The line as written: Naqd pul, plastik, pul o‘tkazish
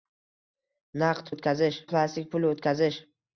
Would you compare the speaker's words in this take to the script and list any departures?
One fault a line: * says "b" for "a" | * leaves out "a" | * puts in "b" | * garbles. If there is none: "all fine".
* says "o‘tkazish" for "pul"